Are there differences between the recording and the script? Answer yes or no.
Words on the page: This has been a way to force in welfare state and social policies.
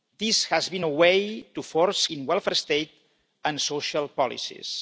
no